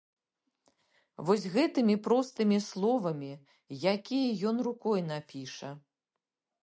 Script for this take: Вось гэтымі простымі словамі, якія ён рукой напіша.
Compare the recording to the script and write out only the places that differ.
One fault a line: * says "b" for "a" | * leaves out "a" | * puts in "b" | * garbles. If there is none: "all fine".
all fine